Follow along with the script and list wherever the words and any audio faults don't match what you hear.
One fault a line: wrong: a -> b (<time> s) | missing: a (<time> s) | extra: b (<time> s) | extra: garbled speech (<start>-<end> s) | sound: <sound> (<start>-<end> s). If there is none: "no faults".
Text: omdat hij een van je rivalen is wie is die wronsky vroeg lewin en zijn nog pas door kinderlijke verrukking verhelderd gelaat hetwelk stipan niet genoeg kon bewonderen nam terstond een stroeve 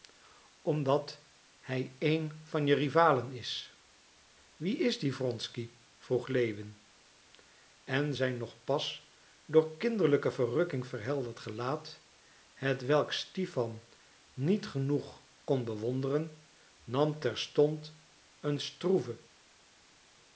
no faults